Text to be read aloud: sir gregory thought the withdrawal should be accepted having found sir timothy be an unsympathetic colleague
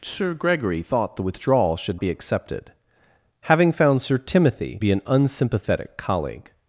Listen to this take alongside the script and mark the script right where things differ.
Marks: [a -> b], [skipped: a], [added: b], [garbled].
sir gregory thought the withdrawal should be accepted having found sir timothy be an unsympathetic colleague